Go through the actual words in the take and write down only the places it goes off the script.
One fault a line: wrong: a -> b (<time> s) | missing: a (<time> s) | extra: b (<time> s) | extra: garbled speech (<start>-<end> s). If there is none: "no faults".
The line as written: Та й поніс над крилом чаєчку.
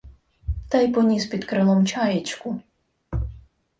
wrong: над -> під (1.2 s)